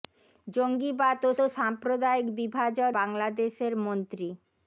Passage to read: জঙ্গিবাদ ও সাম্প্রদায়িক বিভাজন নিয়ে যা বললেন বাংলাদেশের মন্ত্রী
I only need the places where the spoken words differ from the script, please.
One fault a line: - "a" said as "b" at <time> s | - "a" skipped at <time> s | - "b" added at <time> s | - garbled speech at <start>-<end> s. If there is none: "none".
- "ও" added at 1.4 s
- "নিয়ে যা বললেন" skipped at 2.9 s